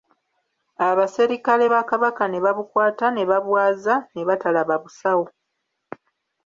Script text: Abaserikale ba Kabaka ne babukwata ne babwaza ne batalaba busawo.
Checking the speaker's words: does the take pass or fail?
pass